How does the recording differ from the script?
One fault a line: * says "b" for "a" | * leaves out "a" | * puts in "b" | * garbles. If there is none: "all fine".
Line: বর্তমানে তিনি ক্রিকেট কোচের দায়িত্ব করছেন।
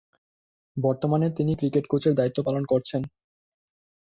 * puts in "পালন"